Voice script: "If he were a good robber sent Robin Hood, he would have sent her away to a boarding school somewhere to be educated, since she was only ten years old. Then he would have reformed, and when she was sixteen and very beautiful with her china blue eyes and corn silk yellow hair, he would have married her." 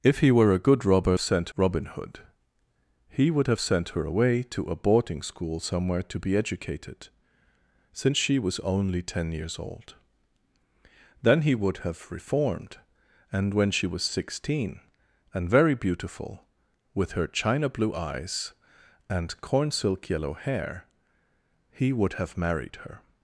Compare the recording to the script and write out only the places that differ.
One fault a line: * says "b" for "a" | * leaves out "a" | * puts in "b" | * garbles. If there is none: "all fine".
all fine